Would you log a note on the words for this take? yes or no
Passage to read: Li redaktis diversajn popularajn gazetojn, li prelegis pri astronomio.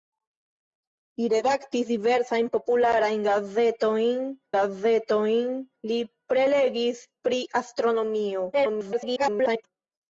yes